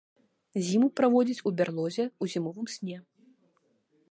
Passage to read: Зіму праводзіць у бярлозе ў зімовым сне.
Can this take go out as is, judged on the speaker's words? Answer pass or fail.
pass